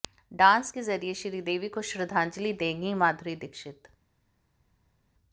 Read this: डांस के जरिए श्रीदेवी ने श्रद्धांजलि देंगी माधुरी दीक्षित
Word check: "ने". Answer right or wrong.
wrong